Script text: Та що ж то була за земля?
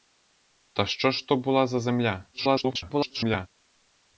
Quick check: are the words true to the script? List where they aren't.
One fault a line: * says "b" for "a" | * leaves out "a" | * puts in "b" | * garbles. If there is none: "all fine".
* garbles